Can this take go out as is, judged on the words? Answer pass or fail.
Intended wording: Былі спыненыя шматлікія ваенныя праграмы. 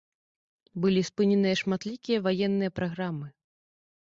pass